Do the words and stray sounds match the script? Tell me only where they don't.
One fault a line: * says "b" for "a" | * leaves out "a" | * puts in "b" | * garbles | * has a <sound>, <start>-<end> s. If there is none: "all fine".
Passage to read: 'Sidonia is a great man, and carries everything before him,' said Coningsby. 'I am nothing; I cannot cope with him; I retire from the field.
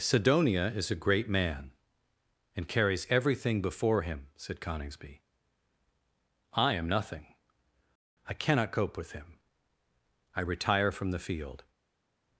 all fine